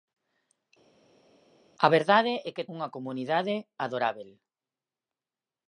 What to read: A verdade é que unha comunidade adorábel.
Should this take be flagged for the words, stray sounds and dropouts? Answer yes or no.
no